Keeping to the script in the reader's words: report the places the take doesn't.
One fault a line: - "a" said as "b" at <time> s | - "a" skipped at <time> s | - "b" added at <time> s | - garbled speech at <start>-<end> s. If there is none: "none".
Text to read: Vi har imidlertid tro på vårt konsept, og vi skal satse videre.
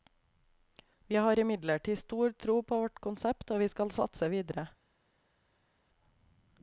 - "stor" added at 2.0 s